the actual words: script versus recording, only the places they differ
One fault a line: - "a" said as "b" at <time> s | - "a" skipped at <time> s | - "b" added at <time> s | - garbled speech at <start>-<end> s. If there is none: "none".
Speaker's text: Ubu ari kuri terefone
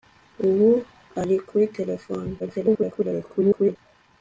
- garbled speech at 2.4-3.8 s